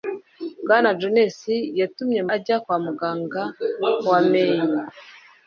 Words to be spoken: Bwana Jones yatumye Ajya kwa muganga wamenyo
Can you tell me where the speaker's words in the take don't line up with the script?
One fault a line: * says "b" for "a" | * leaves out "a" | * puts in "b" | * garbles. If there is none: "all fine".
all fine